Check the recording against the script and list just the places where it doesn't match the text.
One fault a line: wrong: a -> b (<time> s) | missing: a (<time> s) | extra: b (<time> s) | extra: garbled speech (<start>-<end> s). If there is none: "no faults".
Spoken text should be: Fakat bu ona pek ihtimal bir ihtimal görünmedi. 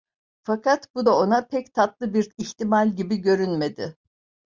extra: da (1.0 s)
wrong: ihtimal -> tatlı (1.7 s)
extra: gibi (3.0 s)